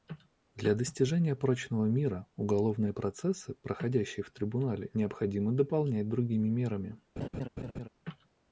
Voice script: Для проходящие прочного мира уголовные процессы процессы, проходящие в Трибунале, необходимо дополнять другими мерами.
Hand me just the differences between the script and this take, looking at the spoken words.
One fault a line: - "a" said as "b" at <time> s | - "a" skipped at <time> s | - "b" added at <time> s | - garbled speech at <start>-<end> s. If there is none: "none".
- "проходящие" said as "достижения" at 0.7 s
- "процессы" skipped at 3.5 s